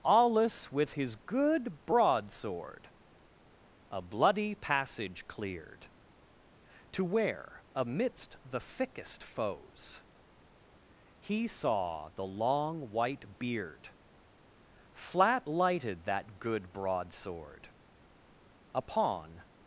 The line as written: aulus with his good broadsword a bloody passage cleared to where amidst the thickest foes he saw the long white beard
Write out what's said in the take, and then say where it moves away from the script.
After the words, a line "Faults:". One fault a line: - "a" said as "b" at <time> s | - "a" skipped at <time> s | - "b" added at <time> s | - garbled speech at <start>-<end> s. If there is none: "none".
aulus with his good broadsword a bloody passage cleared to where amidst the thickest foes he saw the long white beard flat lighted that good broadsword upon
Faults:
- "flat lighted that good broadsword upon" added at 14.9 s